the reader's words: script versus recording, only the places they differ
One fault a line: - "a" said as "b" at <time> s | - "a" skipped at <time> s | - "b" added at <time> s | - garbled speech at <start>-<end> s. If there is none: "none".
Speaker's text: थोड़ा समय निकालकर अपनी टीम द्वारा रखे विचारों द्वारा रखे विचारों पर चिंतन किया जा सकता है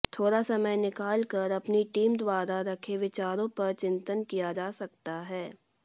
- "द्वारा रखे विचारों" skipped at 3.5 s